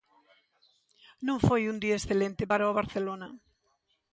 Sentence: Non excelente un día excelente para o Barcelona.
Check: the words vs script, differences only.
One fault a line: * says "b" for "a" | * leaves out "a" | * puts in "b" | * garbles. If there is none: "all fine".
* says "foi" for "excelente"